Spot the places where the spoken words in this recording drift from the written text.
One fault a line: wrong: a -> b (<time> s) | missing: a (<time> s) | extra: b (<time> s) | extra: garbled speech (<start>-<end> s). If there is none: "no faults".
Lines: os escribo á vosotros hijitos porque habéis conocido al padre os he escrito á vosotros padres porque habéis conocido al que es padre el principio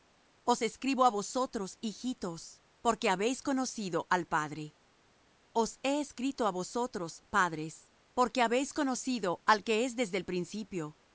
wrong: padre -> desde (10.0 s)